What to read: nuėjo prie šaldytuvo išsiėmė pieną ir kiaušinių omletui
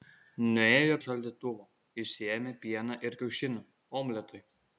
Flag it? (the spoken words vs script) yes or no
yes